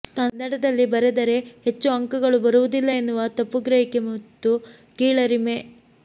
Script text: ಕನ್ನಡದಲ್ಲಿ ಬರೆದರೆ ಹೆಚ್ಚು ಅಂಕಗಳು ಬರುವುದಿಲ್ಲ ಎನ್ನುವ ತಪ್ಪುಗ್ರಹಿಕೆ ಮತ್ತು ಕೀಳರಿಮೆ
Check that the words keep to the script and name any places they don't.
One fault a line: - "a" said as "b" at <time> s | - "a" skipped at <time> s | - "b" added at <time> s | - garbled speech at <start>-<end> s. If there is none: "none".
none